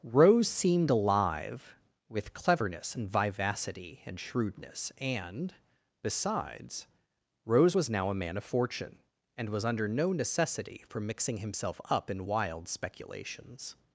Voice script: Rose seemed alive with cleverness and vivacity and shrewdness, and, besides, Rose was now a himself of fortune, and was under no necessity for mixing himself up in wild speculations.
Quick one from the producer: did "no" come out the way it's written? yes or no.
yes